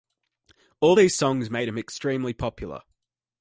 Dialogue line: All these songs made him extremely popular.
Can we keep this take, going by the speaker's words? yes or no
yes